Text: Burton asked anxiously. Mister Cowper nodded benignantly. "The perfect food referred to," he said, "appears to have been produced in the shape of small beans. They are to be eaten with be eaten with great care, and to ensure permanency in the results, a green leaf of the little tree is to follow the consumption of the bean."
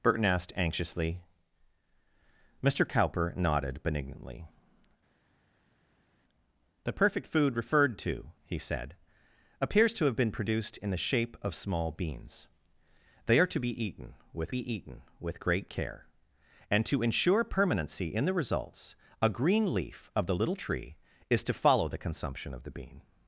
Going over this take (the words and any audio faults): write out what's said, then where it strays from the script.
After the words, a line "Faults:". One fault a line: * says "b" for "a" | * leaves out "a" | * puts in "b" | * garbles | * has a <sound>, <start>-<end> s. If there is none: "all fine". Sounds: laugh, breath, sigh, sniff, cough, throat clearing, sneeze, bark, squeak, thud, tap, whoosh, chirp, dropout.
Burton asked anxiously. Mister Cowper nodded benignantly. "The perfect food referred to," he said, "appears to have been produced in the shape of small beans. They are to be eaten with be eaten with great care, and to ensure permanency in the results, a green leaf of the little tree is to follow the consumption of the bean."
Faults:
all fine